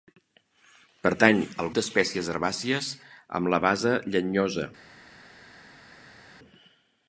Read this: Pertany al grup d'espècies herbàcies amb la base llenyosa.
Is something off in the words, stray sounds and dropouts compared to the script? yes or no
yes